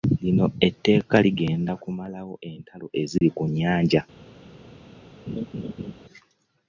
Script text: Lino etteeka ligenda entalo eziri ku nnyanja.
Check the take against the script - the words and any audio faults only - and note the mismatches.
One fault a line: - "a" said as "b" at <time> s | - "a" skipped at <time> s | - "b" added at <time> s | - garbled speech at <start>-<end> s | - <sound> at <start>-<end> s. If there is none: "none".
- "kumalawo" added at 1.8 s
- dropout at 3.2-3.2 s
- laugh at 5.3-5.9 s